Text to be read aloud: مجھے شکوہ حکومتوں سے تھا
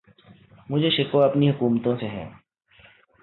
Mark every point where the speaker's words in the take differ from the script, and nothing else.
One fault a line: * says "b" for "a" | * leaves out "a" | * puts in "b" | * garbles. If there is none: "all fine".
* puts in "اپنی"
* says "ہے" for "تھا"